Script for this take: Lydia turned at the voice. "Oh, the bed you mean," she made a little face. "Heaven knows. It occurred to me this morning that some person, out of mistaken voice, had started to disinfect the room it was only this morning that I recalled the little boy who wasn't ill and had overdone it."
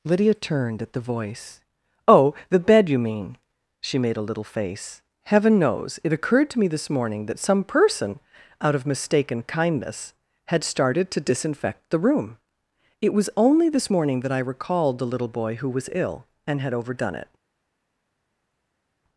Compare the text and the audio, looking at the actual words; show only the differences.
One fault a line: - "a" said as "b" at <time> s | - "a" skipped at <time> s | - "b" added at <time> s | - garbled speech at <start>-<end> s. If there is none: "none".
- "voice" said as "kindness" at 9.4 s
- "wasn't" said as "was" at 15.7 s